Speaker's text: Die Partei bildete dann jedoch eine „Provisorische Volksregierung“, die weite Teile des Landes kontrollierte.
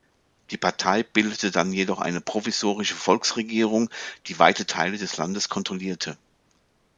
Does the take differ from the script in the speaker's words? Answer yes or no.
no